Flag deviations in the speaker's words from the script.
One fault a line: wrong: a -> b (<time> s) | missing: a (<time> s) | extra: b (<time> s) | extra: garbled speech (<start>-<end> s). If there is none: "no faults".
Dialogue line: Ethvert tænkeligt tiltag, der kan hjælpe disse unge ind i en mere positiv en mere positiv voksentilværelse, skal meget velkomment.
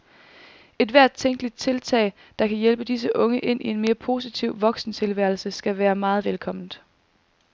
missing: en mere positiv (4.6 s)
extra: være (5.8 s)